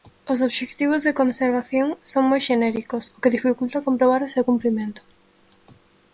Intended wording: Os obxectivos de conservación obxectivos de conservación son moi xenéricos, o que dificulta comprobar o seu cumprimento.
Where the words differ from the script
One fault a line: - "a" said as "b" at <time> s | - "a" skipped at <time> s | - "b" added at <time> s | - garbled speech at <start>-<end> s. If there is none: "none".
- "obxectivos de conservación" skipped at 1.9 s